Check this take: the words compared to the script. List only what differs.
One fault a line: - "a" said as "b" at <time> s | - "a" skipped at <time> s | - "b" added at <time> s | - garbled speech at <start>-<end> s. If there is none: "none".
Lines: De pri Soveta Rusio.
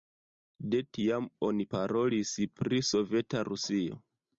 - "tiam oni parolis" added at 1.0 s